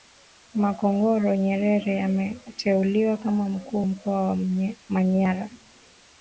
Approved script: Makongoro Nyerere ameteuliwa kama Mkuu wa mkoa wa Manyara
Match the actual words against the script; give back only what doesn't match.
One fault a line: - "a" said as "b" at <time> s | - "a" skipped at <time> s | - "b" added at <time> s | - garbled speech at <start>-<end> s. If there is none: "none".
- "wa" skipped at 3.9 s